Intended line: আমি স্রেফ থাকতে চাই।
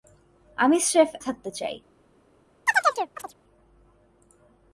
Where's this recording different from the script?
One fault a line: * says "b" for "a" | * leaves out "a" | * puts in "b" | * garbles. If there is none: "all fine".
all fine